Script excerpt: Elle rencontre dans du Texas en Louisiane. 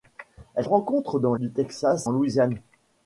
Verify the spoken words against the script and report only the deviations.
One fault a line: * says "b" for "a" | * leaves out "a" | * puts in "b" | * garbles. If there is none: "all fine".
all fine